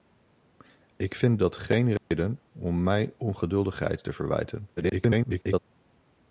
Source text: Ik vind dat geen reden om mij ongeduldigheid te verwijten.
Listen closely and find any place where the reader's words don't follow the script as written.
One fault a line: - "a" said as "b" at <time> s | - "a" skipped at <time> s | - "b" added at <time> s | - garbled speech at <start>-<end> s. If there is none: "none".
- garbled speech at 4.8-5.6 s